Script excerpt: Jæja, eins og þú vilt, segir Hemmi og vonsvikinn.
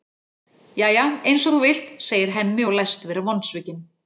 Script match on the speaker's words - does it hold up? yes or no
no